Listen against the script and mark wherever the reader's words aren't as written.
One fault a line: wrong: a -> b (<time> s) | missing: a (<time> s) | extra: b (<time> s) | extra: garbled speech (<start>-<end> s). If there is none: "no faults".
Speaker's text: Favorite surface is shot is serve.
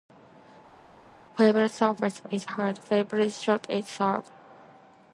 extra: hard favorite (2.4 s)